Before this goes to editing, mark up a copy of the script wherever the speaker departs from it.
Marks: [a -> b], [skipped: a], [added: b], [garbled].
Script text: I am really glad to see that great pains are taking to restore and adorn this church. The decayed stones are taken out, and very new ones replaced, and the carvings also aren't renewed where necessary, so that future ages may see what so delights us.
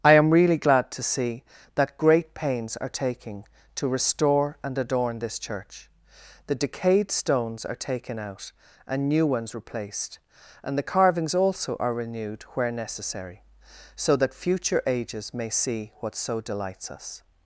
I am really glad to see that great pains are taking to restore and adorn this church. The decayed stones are taken out, and [skipped: very] new ones replaced, and the carvings also [aren't -> are] renewed where necessary, so that future ages may see what so delights us.